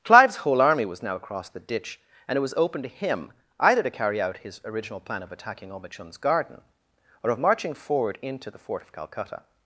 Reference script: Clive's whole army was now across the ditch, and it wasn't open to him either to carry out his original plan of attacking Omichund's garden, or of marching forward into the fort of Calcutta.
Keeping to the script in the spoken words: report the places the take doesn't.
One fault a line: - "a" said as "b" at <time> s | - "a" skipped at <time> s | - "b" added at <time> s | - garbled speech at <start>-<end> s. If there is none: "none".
- "wasn't" said as "was" at 2.4 s